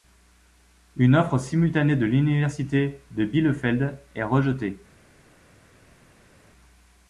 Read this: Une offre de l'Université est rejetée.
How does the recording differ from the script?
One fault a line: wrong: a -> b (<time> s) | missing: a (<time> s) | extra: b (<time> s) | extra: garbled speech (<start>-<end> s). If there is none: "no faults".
extra: simultanée (1.4 s)
extra: de Bielefeld (3.1 s)